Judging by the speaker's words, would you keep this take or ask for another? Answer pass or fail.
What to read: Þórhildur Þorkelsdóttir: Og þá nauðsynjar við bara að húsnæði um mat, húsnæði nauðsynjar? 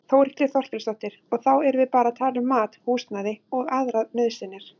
fail